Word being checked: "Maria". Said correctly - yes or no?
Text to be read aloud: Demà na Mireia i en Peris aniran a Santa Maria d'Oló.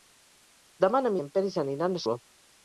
no